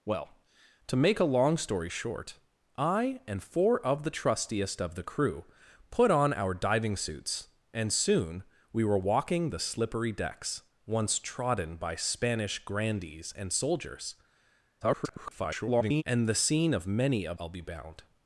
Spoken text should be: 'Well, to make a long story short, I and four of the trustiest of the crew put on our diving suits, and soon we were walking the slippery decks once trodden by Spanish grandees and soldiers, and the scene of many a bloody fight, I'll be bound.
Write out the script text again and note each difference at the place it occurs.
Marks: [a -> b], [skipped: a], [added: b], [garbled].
'Well, to make a long story short, I and four of the trustiest of the crew put on our diving suits, and soon we were walking the slippery decks once trodden by Spanish grandees and soldiers, [garbled] and the scene of many a [skipped: bloody fight,] I'll be bound.